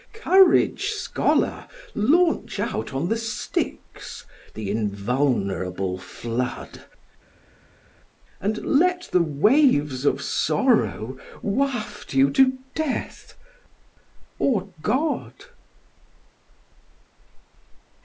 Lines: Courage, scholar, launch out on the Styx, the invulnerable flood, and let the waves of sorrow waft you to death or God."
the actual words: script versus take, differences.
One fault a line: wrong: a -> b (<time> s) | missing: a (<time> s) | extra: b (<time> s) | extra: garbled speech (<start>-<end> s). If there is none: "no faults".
no faults